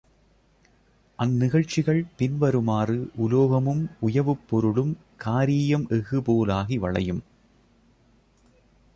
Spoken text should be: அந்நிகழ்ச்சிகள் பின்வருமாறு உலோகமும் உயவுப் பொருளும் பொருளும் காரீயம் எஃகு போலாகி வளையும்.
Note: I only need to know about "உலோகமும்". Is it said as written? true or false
true